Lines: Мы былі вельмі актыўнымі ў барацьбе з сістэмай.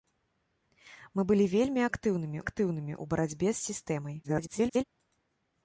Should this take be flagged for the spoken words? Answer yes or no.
yes